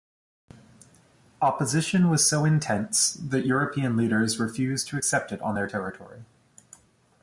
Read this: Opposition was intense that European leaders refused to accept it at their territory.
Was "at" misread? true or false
true